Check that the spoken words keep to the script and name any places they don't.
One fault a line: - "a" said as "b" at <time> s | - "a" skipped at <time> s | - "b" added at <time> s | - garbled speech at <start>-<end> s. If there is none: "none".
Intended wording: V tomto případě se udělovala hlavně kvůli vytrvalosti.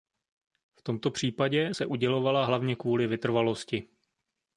none